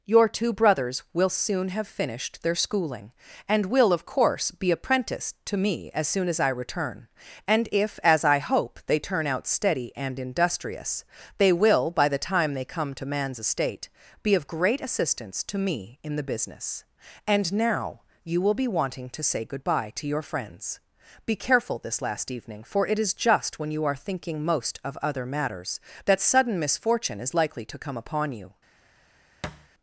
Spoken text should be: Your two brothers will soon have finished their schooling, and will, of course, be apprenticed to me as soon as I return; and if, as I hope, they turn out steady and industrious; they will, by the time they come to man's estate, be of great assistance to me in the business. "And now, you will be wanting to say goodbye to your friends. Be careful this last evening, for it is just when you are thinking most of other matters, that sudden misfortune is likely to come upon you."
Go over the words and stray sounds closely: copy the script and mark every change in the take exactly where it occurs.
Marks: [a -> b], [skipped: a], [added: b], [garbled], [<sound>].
Your two brothers will soon have finished their schooling, and will, of course, be apprenticed to me as soon as I return; and if, as I hope, they turn out steady and industrious; they will, by the time they come to man's estate, be of great assistance to me in the business. "And now, you will be wanting to say goodbye to your friends. Be careful this last evening, for it is just when you are thinking most of other matters, that sudden misfortune is likely to come upon you." [thud]